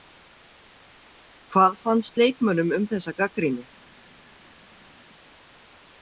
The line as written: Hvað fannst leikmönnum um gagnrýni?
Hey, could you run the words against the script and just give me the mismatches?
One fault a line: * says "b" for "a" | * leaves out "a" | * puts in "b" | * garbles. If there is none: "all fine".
* puts in "þessa"